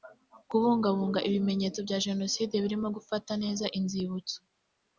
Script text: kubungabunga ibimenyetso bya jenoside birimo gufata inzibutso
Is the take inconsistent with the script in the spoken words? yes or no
yes